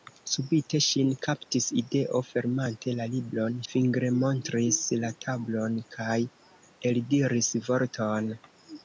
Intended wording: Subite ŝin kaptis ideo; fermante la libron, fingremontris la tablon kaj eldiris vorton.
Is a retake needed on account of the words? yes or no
no